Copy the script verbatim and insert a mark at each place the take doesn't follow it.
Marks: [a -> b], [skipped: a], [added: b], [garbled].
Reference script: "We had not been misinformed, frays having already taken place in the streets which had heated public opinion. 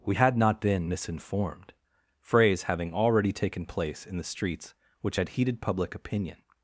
"We had not been misinformed, frays having already taken place in the streets which had heated public opinion.